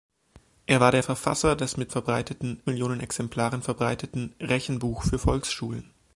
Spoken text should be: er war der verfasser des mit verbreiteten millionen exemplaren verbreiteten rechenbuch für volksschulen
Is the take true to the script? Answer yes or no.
yes